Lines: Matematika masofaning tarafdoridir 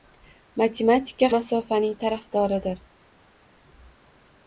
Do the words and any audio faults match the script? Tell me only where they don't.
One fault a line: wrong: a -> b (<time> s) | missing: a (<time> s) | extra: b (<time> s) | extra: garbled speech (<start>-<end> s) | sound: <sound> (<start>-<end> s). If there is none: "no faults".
no faults